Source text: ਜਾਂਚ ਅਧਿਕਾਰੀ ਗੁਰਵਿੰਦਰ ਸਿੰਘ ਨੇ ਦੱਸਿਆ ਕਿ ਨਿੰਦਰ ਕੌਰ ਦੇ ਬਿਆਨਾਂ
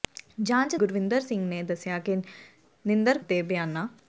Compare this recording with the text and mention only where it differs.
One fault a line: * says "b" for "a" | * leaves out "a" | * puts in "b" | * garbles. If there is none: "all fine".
* leaves out "ਅਧਿਕਾਰੀ"
* leaves out "ਕੌਰ"